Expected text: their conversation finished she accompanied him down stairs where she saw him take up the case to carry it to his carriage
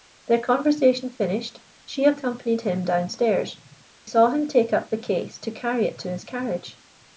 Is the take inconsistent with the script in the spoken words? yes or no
yes